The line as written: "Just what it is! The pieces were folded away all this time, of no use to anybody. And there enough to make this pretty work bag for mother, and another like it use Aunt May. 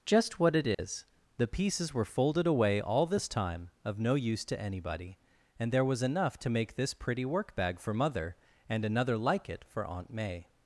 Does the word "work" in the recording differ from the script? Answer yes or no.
no